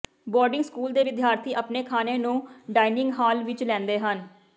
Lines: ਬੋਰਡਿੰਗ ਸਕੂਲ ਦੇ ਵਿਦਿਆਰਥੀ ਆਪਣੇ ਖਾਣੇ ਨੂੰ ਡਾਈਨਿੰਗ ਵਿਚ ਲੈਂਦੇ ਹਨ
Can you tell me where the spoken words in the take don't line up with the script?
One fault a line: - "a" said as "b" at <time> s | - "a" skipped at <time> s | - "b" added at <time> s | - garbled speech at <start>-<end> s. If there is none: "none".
- "ਹਾਲ" added at 3.2 s